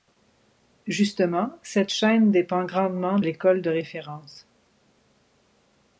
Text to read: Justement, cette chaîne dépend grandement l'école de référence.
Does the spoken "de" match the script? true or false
true